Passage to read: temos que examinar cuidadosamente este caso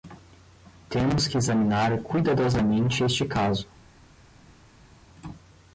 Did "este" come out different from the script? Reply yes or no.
no